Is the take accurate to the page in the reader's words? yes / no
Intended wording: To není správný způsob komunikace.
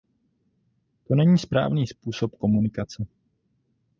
yes